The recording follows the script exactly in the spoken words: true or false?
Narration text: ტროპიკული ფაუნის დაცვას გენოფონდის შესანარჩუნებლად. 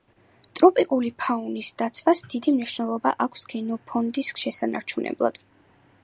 false